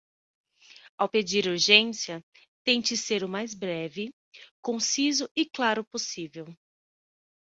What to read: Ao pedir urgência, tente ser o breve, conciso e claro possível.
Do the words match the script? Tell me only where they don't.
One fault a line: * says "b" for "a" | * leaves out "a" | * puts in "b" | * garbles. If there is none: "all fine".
* puts in "mais"